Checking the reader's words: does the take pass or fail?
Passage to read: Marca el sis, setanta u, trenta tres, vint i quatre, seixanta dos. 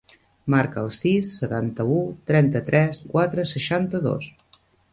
fail